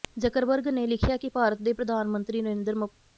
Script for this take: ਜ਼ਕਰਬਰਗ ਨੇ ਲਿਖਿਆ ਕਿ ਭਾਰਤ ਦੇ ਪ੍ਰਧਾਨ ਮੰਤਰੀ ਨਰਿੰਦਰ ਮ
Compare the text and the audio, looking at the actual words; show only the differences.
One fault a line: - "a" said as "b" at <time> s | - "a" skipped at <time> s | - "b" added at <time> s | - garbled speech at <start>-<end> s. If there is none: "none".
none